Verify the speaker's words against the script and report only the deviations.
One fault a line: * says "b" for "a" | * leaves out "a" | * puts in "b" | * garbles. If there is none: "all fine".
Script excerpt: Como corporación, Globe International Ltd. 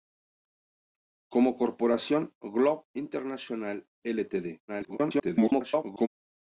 * garbles